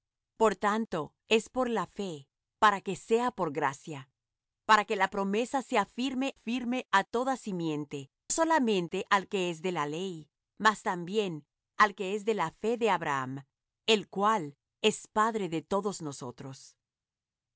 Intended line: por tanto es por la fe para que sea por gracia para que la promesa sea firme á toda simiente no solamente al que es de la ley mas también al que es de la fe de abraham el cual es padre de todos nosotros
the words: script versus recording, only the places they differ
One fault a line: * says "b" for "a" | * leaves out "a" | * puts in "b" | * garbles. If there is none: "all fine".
* puts in "firme"
* leaves out "no"